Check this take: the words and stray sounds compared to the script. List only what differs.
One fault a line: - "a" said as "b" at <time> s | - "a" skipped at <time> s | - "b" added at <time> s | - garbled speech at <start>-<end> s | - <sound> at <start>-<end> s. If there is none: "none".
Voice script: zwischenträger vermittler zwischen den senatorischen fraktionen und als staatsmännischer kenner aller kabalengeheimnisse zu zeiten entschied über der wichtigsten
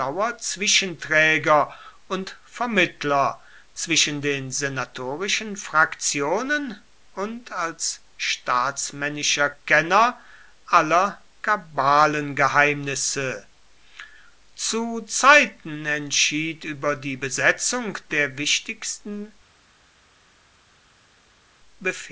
- "und" added at 2.1 s
- "die besetzung" added at 17.0 s